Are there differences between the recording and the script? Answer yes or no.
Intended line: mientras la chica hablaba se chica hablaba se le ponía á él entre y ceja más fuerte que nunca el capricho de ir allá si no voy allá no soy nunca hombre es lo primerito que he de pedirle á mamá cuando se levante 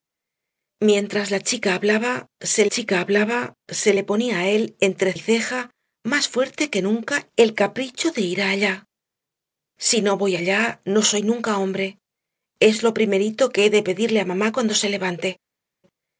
no